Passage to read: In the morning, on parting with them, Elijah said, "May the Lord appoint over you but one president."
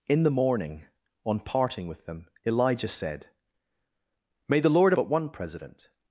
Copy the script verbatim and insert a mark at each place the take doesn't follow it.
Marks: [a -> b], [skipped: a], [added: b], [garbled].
In the morning, on parting with them, Elijah said, "May the Lord [skipped: appoint over you] but one president."